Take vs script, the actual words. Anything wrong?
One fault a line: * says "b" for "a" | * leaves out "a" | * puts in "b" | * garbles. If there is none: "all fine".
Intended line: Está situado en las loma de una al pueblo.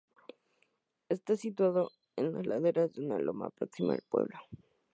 * says "laderas" for "loma"
* puts in "loma próxima"